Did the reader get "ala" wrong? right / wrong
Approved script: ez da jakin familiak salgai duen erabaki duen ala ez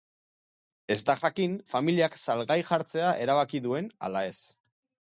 right